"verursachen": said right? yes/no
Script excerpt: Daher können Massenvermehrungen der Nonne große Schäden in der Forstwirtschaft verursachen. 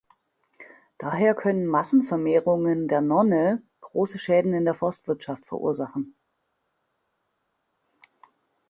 yes